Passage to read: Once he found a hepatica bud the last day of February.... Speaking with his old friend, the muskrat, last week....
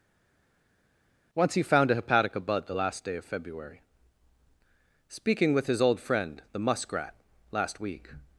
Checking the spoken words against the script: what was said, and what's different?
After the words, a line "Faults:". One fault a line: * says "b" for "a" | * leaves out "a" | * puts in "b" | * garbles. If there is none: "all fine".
Once he found a hepatica bud the last day of February.... Speaking with his old friend, the muskrat, last week....
Faults:
all fine